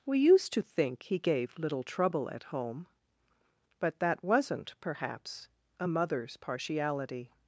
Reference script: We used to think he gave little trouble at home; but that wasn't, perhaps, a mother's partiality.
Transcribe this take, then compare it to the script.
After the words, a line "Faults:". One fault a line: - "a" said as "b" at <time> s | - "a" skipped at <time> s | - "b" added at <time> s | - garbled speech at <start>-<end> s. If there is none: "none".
We used to think he gave little trouble at home; but that wasn't, perhaps, a mother's partiality.
Faults:
none